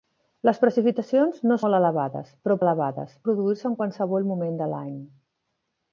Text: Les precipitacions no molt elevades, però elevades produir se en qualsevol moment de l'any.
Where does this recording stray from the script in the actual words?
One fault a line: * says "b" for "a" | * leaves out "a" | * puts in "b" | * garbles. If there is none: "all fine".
all fine